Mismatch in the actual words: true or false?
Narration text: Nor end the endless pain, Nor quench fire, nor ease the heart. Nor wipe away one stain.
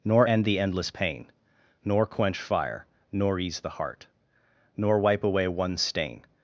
false